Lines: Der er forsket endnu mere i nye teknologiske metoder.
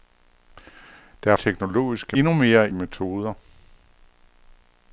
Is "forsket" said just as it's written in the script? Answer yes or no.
no